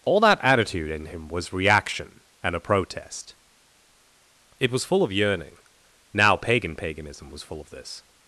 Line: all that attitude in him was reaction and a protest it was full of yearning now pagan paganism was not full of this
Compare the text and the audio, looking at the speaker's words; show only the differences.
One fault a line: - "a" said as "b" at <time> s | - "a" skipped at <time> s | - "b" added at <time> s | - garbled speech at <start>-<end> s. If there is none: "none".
- "not" skipped at 7.4 s